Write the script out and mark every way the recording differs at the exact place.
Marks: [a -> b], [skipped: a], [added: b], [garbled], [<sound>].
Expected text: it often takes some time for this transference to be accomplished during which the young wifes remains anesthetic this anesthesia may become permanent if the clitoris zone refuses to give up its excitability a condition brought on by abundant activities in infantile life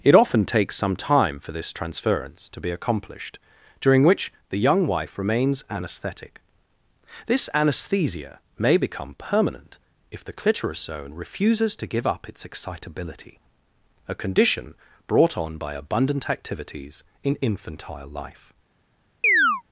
it often takes some time for this transference to be accomplished during which the young [wifes -> wife] remains anesthetic this anesthesia may become permanent if the clitoris zone refuses to give up its excitability a condition brought on by abundant activities in infantile life [chirp]